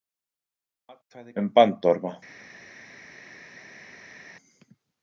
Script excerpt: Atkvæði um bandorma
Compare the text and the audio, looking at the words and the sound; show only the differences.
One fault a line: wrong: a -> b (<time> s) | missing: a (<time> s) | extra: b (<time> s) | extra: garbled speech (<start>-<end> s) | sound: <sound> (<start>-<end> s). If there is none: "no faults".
no faults